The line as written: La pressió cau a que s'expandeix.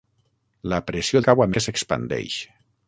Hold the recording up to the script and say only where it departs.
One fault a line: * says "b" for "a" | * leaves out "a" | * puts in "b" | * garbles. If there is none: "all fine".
all fine